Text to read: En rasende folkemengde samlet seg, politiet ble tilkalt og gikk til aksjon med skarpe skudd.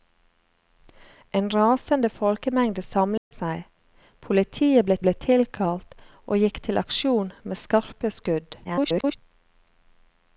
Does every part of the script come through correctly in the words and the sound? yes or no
no